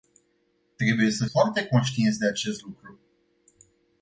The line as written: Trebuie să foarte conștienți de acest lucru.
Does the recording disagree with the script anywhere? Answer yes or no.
no